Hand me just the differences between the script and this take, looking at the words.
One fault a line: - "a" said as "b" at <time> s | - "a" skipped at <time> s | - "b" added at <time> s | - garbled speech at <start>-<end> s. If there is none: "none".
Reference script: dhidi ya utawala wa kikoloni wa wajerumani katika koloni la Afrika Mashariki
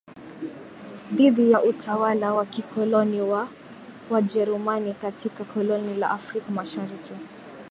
none